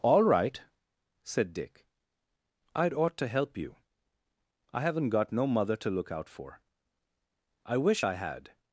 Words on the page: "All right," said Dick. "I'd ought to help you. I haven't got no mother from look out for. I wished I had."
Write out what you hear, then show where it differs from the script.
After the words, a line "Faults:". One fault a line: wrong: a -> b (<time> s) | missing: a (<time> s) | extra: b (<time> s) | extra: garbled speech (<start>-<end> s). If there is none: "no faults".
"All right," said Dick. "I'd ought to help you. I haven't got no mother to look out for. I wish I had."
Faults:
wrong: from -> to (5.8 s)
wrong: wished -> wish (7.8 s)